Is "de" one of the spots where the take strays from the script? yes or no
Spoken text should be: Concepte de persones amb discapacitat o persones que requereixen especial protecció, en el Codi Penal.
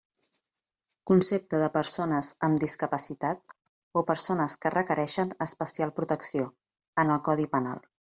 no